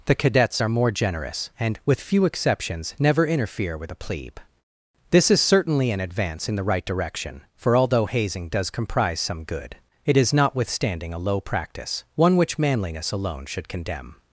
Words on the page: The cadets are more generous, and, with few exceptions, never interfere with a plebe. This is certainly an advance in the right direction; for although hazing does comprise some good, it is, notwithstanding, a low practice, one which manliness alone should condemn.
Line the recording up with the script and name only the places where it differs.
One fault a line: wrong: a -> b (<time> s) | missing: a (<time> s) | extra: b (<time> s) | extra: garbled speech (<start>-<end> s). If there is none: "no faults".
no faults